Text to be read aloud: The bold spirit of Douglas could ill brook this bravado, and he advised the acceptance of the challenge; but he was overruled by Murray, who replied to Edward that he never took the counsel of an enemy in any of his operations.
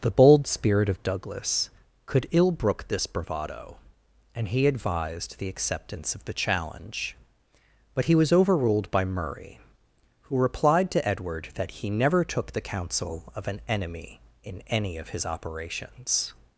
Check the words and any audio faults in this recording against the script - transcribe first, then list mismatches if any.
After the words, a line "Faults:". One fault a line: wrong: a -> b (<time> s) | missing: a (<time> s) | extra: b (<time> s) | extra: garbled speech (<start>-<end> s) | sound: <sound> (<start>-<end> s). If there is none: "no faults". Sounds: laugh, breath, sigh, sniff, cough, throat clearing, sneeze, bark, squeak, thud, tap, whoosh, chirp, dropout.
The bold spirit of Douglas could ill brook this bravado, and he advised the acceptance of the challenge; but he was overruled by Murray, who replied to Edward that he never took the counsel of an enemy in any of his operations.
Faults:
no faults